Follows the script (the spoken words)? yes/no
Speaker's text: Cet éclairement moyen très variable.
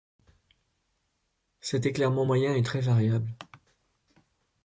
no